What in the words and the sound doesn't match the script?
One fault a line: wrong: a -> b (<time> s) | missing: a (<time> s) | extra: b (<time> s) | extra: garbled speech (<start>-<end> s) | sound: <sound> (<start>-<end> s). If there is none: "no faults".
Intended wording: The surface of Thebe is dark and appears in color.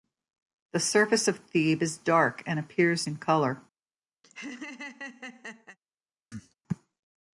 sound: laugh (4.2-5.8 s)
sound: cough (6.3-6.5 s)